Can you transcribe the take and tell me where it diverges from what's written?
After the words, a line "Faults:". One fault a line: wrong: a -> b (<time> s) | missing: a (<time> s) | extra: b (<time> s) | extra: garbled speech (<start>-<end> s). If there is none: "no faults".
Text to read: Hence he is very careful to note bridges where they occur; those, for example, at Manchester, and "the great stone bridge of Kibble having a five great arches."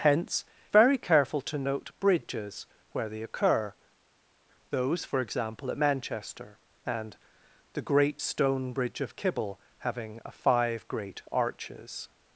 Hence very careful to note bridges where they occur; those, for example, at Manchester, and "the great stone bridge of Kibble having a five great arches."
Faults:
missing: he is (0.4 s)